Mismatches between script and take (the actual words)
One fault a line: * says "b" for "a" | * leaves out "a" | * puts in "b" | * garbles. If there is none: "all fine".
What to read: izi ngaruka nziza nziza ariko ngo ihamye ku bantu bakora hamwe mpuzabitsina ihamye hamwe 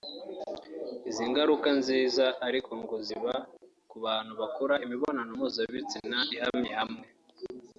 * leaves out "nziza"
* says "ziba" for "ihamye"
* says "imibonano" for "hamwe"